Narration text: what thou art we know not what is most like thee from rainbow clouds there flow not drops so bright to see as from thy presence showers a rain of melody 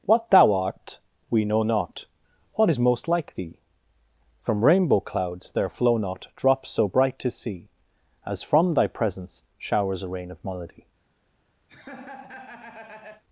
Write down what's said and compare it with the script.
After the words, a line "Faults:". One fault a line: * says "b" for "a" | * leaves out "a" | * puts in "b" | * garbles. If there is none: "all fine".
what thou art we know not what is most like thee from rainbow clouds there flow not drops so bright to see as from thy presence showers a rain of melody
Faults:
all fine